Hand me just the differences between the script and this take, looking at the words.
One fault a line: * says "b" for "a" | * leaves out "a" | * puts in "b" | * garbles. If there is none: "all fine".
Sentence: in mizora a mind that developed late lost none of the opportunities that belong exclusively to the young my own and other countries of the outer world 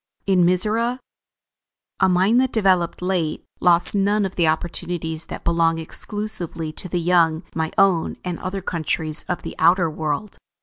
all fine